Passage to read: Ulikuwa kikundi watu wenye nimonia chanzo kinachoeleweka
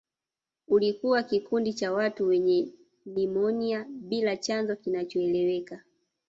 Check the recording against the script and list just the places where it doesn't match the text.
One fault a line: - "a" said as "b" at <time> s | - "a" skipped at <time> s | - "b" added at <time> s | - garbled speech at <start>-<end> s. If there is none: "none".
- "cha" added at 1.7 s
- "bila" added at 3.9 s